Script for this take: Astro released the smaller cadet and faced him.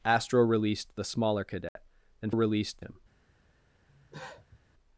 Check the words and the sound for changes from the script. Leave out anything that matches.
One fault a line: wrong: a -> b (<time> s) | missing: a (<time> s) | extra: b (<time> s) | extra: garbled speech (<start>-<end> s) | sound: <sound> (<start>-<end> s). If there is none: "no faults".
sound: dropout (1.7-1.8 s)
wrong: faced -> released (2.3 s)
sound: cough (3.9-4.6 s)